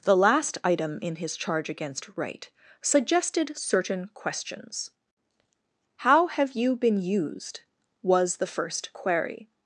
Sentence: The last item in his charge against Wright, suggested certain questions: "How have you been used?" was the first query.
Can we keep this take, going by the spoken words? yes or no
yes